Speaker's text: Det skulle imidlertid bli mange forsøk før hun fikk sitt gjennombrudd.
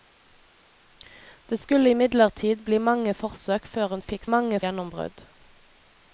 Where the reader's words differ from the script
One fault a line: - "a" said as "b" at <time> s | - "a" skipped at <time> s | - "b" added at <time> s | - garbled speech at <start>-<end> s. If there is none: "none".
- "sitt" said as "mange" at 4.3 s